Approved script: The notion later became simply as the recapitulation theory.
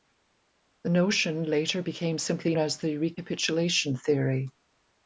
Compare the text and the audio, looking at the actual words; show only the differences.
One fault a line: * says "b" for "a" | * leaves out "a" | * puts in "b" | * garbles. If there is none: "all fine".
all fine